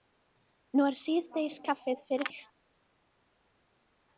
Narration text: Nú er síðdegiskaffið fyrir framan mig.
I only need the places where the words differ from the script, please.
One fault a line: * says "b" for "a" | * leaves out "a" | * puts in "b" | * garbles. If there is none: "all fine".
* leaves out "framan"